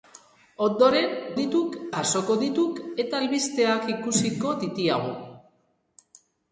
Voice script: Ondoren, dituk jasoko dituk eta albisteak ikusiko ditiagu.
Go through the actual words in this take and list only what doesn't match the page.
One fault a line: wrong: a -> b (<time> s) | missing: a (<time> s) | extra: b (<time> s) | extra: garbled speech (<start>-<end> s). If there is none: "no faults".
no faults